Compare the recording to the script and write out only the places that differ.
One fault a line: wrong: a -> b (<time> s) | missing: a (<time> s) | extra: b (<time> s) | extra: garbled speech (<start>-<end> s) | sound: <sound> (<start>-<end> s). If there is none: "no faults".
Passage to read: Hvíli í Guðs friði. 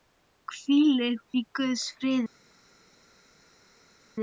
no faults